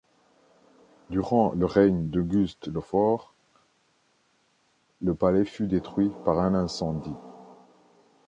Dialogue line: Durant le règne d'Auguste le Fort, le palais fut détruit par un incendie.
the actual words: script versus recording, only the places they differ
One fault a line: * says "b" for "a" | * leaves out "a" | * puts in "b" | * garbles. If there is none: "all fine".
all fine